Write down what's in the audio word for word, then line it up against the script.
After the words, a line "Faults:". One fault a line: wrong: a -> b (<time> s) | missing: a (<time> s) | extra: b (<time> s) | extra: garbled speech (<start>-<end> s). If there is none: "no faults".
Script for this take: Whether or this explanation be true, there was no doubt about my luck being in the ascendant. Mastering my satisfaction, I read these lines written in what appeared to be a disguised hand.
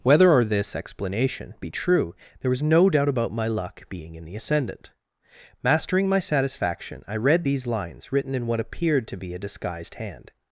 Whether or this explanation be true, there was no doubt about my luck being in the ascendant. Mastering my satisfaction, I read these lines written in what appeared to be a disguised hand.
Faults:
no faults